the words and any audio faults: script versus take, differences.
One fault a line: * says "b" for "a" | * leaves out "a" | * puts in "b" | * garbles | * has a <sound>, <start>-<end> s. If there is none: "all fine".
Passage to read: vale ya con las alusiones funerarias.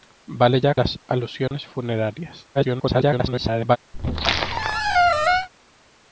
* leaves out "con"
* has a dropout, 1.5-1.5 s
* garbles
* has a squeak, 3.9-5.5 s